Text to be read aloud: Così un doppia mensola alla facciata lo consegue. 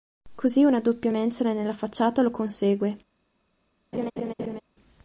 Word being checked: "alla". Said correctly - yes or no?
no